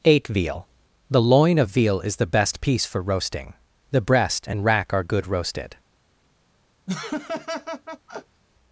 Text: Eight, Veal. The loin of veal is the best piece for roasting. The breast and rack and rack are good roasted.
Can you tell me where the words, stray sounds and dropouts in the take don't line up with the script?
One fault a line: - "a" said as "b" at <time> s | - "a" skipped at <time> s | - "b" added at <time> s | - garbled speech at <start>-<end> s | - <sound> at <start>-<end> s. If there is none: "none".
- "and rack" skipped at 4.9 s
- laugh at 6.9-8.4 s